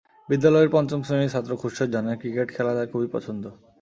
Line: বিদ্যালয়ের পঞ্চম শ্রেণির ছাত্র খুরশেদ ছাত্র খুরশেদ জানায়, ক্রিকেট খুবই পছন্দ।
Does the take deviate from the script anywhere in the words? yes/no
yes